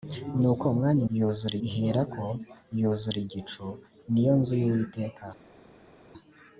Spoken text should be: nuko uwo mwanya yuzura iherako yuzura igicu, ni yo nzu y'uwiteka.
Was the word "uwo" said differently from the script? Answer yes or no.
no